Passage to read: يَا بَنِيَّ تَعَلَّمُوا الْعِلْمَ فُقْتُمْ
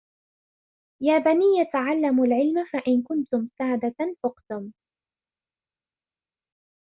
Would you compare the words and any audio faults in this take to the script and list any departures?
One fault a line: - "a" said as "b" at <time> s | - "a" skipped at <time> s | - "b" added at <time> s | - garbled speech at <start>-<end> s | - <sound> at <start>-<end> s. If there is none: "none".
- "فَإِنْ كُنْتُمْ سَادَةً" added at 2.6 s